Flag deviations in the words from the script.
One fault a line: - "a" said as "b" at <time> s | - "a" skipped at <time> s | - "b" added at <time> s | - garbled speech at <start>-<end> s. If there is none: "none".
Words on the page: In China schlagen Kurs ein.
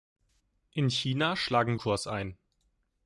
none